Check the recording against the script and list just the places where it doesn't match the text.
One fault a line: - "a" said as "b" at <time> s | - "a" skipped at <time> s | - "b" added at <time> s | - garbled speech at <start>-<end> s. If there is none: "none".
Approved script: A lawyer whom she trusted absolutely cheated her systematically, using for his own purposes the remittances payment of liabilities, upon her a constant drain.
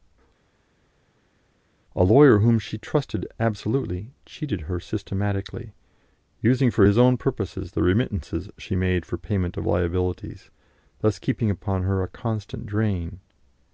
- "she made for" added at 8.6 s
- "thus keeping" added at 11.0 s